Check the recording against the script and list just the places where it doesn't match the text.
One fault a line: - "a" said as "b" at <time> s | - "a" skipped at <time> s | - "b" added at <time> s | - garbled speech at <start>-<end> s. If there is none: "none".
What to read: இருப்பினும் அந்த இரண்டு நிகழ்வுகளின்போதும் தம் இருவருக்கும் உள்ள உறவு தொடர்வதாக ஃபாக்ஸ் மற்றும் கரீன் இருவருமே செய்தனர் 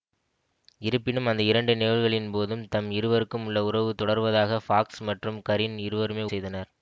none